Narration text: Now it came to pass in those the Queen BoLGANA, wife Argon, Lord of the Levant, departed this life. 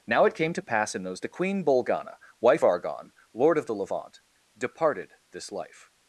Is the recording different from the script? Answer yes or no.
no